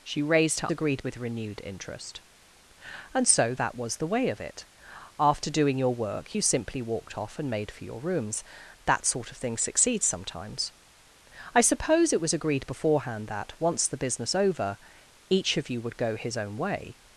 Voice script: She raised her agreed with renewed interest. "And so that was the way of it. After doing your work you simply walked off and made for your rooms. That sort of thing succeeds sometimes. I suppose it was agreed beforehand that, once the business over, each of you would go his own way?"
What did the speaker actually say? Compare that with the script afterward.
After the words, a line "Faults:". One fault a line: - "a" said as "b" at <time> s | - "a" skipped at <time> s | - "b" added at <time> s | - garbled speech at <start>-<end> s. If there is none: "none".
She raised her agreed with renewed interest. "And so that was the way of it. After doing your work you simply walked off and made for your rooms. That sort of thing succeeds sometimes. I suppose it was agreed beforehand that, once the business over, each of you would go his own way?"
Faults:
none